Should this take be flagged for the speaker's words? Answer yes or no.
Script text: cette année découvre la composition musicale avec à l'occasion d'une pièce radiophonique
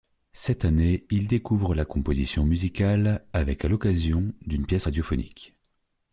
yes